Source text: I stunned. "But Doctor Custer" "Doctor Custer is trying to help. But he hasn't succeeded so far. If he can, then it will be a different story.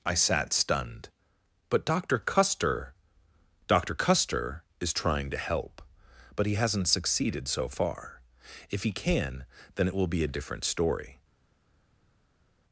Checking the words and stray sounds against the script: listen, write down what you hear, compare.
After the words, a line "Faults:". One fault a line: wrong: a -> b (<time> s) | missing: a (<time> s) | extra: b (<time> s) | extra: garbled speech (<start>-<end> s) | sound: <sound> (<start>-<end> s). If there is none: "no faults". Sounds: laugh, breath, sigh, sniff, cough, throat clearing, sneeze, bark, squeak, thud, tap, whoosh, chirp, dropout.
I sat stunned. "But Doctor Custer" "Doctor Custer is trying to help. But he hasn't succeeded so far. If he can, then it will be a different story.
Faults:
extra: sat (0.1 s)